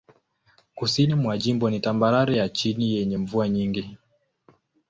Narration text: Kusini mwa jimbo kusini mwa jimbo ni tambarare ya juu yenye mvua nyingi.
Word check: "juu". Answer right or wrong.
wrong